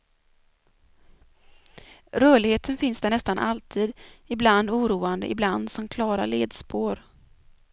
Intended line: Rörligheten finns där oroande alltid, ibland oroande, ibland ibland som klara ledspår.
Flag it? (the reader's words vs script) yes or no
yes